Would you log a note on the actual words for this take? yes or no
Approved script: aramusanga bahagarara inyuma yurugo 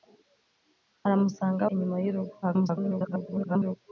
yes